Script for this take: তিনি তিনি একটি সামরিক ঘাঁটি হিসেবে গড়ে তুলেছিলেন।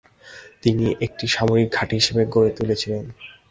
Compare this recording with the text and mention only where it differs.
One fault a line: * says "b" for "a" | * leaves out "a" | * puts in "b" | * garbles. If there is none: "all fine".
* leaves out "তিনি"